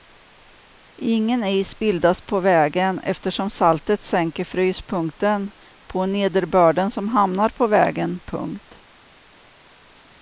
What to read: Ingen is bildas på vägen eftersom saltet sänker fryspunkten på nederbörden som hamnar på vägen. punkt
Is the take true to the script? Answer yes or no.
yes